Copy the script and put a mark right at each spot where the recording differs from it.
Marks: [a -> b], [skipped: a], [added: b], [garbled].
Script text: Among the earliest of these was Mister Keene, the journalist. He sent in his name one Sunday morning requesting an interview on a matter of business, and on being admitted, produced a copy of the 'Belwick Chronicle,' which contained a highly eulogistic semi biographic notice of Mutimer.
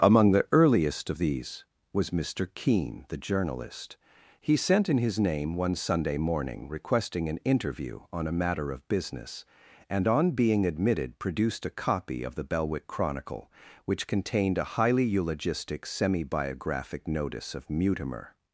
Among the earliest of these was Mister Keene, the journalist. He sent in his name one Sunday morning requesting an interview on a matter of business, and on being admitted, produced a copy of the 'Belwick Chronicle,' which contained a highly eulogistic semi biographic notice of Mutimer.